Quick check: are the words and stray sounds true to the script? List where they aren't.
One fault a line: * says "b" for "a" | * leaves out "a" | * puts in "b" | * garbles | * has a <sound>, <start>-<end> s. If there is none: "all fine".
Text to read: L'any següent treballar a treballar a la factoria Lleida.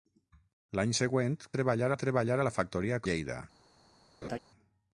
* has a laugh, 4.2-4.4 s